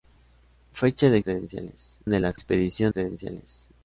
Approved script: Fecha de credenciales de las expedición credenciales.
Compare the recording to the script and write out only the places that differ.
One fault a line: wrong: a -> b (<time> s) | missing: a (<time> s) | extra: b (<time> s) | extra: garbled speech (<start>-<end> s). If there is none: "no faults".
no faults